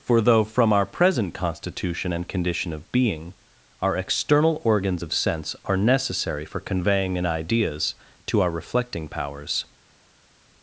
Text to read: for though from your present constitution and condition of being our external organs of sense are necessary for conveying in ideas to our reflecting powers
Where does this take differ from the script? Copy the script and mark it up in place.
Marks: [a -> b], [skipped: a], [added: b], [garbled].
for though from [your -> our] present constitution and condition of being our external organs of sense are necessary for conveying in ideas to our reflecting powers